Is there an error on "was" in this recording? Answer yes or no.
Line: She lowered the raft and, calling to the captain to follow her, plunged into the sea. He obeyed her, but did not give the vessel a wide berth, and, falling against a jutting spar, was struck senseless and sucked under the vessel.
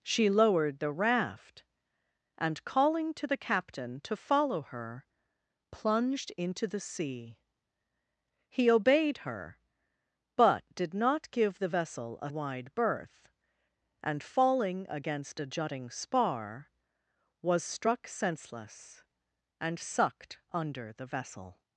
no